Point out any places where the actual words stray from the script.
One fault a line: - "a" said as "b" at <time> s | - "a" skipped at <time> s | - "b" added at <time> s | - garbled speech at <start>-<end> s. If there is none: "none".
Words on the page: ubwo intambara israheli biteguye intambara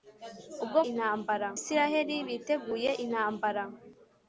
none